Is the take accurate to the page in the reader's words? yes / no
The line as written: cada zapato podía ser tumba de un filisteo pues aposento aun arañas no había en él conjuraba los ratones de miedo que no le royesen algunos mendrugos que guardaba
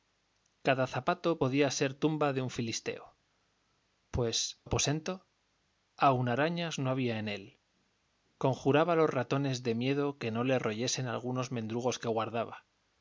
yes